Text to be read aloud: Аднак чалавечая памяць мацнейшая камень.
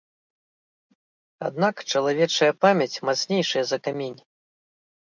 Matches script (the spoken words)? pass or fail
fail